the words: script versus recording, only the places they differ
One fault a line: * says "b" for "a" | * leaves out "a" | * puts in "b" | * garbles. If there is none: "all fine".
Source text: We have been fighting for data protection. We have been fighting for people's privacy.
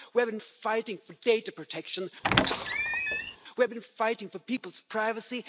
all fine